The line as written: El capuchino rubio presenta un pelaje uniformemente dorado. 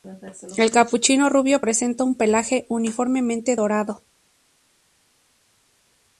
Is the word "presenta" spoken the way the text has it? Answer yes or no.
yes